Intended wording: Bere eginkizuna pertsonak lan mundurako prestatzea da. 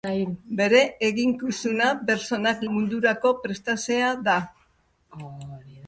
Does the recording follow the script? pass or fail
fail